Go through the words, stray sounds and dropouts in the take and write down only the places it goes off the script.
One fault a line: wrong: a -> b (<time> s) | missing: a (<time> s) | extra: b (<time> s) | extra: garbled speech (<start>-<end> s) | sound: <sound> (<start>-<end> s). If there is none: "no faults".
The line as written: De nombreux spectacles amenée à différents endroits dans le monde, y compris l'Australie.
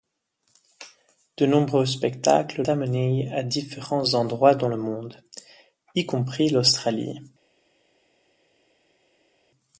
no faults